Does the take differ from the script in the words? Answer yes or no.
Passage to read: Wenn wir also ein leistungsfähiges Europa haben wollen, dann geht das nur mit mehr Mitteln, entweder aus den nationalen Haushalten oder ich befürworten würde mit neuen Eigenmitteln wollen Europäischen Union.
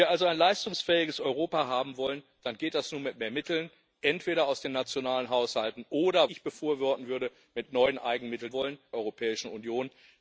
no